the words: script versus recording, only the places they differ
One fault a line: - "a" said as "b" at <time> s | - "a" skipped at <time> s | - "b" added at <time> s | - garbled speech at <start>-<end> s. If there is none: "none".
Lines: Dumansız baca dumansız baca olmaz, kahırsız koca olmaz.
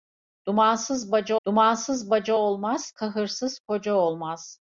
none